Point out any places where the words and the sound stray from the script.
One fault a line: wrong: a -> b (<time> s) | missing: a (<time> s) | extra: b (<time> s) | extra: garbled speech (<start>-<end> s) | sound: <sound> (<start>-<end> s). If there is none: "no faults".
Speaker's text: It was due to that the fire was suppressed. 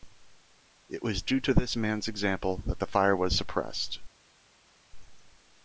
extra: this man's example (1.5 s)